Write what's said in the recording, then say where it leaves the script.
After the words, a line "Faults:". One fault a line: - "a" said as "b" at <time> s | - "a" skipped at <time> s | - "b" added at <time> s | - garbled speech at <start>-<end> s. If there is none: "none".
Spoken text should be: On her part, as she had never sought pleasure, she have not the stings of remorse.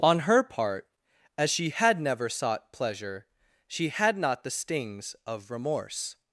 On her part, as she had never sought pleasure, she had not the stings of remorse.
Faults:
- "have" said as "had" at 3.9 s